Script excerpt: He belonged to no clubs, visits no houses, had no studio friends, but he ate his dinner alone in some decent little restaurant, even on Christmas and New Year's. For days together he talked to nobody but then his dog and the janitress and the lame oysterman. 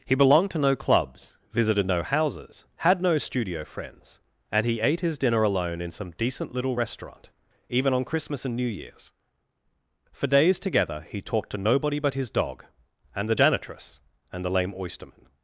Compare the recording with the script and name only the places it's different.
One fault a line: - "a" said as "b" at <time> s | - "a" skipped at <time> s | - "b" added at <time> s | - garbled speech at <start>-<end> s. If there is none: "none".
- "visits" said as "visited" at 1.5 s
- "but" said as "and" at 4.5 s
- "then" skipped at 12.2 s